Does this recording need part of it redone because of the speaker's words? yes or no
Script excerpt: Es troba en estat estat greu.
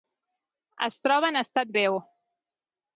yes